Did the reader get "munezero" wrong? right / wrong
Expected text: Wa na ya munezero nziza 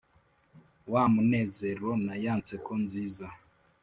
wrong